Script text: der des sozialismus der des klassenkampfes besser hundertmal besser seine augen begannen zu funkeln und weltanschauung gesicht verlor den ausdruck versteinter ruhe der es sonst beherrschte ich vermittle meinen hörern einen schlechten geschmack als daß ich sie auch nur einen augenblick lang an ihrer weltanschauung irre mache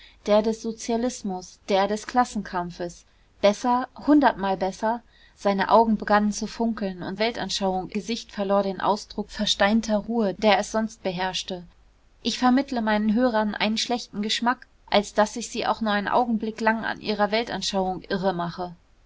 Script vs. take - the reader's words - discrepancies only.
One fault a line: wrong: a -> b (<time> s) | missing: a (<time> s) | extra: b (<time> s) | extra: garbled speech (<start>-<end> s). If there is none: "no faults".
no faults